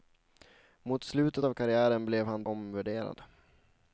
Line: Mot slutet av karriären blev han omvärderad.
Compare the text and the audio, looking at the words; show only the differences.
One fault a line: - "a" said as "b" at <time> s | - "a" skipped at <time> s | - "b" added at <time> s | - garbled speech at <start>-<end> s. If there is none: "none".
none